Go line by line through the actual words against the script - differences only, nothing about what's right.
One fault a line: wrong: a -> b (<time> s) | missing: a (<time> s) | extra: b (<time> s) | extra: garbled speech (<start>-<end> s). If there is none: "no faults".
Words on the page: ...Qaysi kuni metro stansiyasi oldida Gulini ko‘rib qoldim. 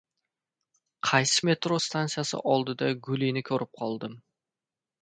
missing: kuni (1.4 s)